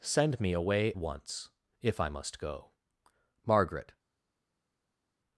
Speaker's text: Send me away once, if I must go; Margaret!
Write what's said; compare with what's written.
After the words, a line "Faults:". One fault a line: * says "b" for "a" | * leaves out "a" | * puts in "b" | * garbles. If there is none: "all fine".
Send me away once, if I must go; Margaret!
Faults:
all fine